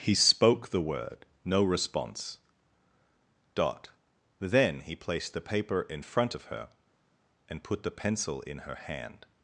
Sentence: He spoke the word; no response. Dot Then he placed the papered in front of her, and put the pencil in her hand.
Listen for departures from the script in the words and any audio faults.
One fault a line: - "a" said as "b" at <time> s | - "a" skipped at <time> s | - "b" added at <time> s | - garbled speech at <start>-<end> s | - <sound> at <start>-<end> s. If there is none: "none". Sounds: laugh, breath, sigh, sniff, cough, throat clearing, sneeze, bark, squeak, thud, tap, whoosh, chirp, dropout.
- "papered" said as "paper" at 5.5 s